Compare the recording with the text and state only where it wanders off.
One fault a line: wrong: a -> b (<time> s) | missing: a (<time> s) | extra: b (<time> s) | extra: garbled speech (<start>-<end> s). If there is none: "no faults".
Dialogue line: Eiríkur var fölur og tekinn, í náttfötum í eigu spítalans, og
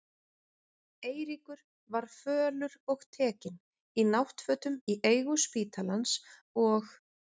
no faults